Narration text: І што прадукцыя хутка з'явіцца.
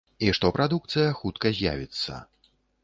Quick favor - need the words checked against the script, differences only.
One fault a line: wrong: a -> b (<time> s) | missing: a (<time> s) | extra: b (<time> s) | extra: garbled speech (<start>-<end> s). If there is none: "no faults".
no faults